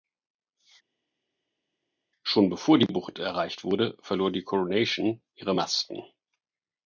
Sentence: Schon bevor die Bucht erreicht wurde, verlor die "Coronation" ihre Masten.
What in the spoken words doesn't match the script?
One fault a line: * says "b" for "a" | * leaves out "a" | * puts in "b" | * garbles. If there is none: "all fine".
all fine